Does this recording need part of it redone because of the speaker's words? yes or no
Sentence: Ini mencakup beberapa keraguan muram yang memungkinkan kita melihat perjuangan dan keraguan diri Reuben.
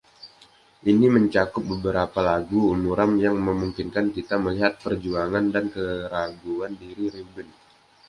yes